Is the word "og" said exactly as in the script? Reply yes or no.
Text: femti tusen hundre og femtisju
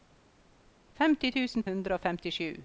yes